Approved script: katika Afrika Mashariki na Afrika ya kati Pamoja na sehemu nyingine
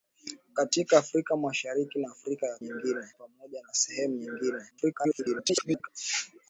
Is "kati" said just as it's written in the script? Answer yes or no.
no